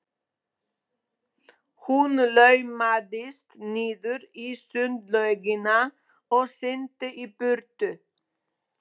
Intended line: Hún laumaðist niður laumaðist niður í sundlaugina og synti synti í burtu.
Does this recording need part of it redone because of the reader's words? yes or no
yes